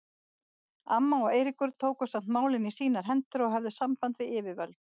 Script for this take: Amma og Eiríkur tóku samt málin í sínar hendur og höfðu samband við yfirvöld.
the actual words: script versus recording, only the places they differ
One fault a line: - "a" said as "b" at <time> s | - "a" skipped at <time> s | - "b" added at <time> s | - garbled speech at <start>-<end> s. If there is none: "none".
none